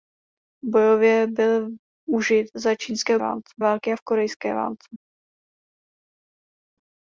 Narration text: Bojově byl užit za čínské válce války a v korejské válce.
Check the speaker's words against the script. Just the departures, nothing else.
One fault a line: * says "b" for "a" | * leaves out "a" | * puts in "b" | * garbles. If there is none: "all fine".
all fine